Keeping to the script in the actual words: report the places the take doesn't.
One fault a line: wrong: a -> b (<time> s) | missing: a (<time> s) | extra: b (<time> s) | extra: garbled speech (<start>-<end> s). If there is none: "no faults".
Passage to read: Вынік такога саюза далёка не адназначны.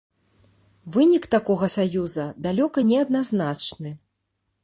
no faults